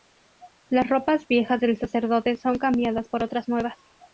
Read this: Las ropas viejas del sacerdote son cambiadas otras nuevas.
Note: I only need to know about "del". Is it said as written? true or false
true